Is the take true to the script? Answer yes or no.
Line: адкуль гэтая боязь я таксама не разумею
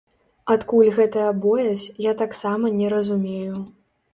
yes